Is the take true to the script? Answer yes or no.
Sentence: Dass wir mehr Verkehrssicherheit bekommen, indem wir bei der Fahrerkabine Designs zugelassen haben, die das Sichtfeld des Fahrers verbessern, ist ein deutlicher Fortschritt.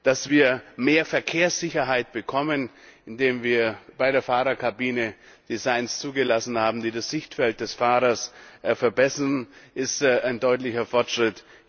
yes